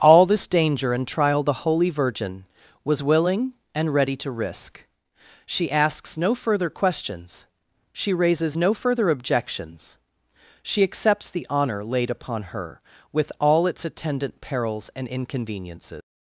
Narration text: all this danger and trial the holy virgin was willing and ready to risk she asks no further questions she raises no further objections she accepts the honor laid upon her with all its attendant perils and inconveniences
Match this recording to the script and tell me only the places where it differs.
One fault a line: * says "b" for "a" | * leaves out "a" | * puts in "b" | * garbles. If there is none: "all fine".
all fine